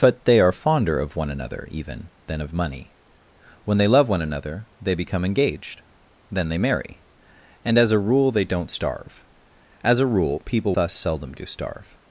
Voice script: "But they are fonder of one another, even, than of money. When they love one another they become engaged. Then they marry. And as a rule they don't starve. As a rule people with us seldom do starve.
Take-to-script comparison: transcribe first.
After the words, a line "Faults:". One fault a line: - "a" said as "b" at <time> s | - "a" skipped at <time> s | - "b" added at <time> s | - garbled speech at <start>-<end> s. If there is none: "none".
"But they are fonder of one another, even, than of money. When they love one another they become engaged. Then they marry. And as a rule they don't starve. As a rule people us seldom do starve.
Faults:
- "with" skipped at 10.7 s